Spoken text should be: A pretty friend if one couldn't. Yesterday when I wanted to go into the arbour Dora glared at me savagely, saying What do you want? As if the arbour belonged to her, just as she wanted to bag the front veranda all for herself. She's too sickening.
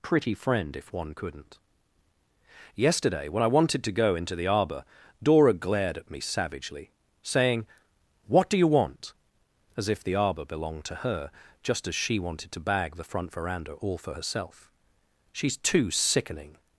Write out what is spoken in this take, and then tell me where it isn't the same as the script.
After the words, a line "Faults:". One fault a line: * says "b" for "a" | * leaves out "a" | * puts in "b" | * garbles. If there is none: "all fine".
pretty friend if one couldn't. Yesterday when I wanted to go into the arbour Dora glared at me savagely, saying What do you want? As if the arbour belonged to her, just as she wanted to bag the front veranda all for herself. She's too sickening.
Faults:
* leaves out "A"